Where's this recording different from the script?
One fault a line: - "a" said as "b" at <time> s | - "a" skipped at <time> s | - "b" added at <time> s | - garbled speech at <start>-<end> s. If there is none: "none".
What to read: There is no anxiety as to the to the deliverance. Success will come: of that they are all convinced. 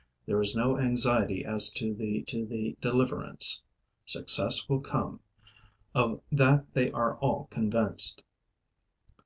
none